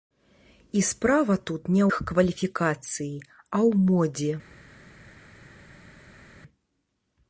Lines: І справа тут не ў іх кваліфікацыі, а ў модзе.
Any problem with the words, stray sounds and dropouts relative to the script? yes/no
yes